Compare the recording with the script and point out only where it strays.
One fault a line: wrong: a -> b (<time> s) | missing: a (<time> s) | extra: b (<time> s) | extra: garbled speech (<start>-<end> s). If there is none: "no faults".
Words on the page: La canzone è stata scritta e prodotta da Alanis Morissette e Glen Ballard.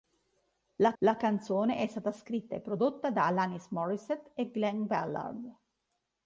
extra: la (1.0 s)